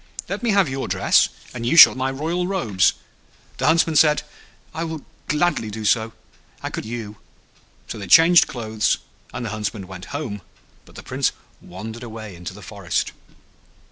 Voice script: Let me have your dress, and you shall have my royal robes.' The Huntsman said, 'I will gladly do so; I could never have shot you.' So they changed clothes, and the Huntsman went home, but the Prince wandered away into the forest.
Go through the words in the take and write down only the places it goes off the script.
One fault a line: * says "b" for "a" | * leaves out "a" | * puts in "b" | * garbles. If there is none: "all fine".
* leaves out "have"
* leaves out "never have shot"